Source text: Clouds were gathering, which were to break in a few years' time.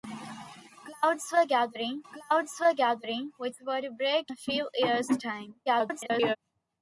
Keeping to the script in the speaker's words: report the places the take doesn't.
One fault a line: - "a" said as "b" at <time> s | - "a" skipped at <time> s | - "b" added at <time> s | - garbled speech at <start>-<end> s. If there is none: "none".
- "clouds were gathering" added at 2.1 s
- "in" skipped at 4.3 s
- garbled speech at 5.7-6.4 s